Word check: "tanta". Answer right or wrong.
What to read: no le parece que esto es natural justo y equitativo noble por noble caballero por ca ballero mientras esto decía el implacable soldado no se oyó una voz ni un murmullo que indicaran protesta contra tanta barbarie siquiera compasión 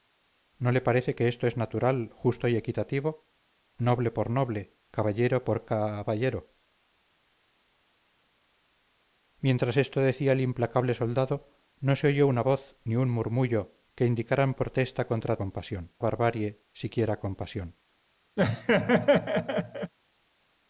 wrong